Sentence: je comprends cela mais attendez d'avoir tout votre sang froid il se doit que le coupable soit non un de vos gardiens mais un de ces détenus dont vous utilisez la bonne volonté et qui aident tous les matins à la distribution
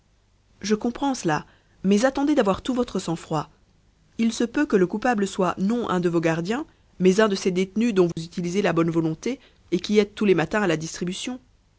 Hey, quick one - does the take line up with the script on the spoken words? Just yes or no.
no